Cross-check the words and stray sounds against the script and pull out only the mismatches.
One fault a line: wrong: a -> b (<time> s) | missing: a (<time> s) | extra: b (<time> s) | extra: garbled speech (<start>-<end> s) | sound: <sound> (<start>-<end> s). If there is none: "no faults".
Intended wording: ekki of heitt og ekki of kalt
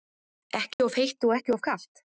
sound: dropout (0.7-0.8 s)